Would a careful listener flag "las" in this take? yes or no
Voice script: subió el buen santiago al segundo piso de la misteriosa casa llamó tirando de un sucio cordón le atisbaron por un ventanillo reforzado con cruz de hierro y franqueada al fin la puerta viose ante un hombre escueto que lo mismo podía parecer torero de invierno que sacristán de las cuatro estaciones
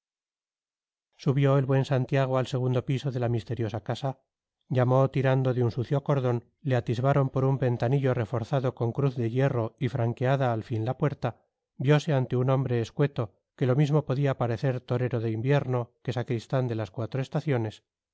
no